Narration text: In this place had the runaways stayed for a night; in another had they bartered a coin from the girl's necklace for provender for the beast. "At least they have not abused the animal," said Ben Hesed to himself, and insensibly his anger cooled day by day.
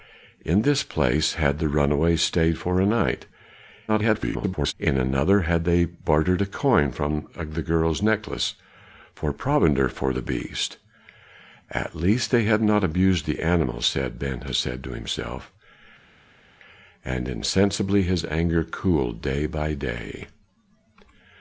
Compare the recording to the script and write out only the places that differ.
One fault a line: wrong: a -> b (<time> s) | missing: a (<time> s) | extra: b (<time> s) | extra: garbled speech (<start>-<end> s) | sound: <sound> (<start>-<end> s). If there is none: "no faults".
extra: garbled speech (3.9-4.7 s)